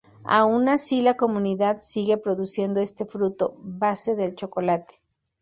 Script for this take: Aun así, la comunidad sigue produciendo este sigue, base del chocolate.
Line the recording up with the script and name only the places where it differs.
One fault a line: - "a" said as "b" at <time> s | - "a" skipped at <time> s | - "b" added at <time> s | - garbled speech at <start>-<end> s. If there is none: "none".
- "sigue" said as "fruto" at 3.0 s